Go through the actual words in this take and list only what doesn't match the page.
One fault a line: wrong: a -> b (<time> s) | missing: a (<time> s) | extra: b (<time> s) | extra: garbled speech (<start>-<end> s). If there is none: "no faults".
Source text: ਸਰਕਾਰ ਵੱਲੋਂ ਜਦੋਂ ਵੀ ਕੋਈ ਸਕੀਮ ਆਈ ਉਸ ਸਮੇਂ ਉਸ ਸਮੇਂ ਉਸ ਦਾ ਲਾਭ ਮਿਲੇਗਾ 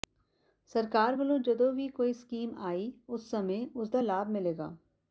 missing: ਸਮੇਂ ਉਸ (3.9 s)